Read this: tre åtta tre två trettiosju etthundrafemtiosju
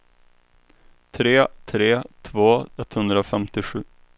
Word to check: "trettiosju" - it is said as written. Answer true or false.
false